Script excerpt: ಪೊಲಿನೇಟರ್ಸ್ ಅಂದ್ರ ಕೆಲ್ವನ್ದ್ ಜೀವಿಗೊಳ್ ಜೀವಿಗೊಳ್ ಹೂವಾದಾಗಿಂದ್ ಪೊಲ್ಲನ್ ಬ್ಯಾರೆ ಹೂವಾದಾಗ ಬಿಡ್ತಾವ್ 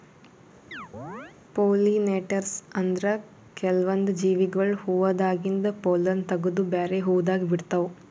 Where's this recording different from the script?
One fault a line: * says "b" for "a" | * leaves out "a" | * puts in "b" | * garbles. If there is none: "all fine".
* leaves out "ಜೀವಿಗೊಳ್"
* puts in "ತಗದು"